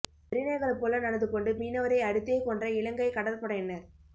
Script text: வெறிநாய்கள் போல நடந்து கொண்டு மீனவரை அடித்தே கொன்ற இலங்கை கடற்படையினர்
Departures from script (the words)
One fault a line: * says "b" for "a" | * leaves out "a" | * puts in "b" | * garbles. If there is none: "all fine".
all fine